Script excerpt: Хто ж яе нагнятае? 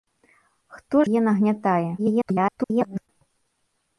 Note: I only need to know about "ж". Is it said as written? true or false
false